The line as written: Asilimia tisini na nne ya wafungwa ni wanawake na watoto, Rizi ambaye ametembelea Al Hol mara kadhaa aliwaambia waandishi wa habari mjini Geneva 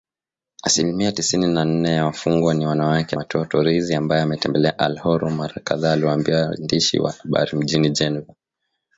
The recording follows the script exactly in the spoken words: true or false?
false